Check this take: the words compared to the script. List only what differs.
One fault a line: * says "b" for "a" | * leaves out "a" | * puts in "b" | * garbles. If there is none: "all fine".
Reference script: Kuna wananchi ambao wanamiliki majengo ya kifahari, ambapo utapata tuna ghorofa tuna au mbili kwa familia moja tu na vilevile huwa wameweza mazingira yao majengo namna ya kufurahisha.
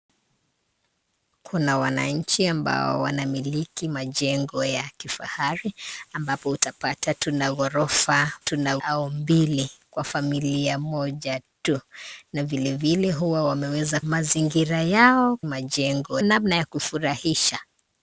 all fine